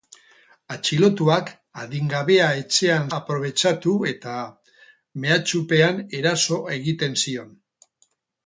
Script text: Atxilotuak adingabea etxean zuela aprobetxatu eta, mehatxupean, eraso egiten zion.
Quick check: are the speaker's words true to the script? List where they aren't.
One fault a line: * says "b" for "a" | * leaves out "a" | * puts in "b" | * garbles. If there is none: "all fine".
* leaves out "zuela"